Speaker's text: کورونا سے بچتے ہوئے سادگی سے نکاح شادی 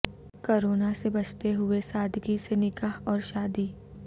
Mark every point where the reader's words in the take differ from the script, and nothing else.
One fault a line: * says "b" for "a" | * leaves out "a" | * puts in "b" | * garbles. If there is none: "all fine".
* puts in "اور"